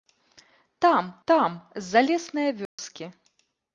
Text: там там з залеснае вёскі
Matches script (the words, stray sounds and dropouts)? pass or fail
fail